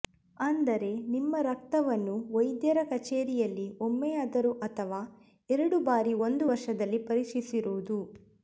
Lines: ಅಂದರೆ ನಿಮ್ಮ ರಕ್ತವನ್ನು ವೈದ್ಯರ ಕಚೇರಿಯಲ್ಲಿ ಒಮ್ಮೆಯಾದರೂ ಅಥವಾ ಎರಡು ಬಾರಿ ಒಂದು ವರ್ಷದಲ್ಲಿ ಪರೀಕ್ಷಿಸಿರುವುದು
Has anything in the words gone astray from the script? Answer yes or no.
no